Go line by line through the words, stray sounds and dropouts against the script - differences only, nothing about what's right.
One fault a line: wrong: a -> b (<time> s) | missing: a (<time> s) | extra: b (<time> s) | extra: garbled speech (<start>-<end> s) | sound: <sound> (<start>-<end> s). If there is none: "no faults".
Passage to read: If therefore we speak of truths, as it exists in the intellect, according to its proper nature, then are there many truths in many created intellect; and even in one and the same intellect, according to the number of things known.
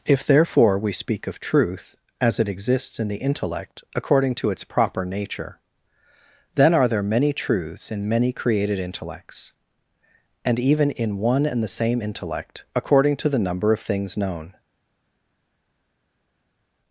wrong: truths -> truth (1.4 s)
wrong: intellect -> intellects (8.8 s)